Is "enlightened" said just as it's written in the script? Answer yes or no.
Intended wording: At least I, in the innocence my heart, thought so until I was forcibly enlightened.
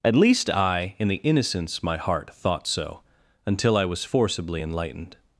yes